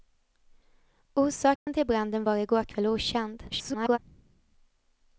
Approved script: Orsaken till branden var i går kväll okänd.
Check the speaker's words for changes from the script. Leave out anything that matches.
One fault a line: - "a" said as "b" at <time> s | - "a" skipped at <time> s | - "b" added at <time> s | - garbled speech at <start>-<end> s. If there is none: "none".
- garbled speech at 3.5-4.0 s